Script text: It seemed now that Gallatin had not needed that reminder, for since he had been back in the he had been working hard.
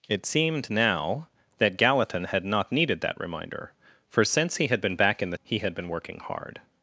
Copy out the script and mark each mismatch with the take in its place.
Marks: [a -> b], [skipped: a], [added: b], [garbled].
It seemed now that Gallatin had not needed that reminder, for since he had been back in the he had been working hard.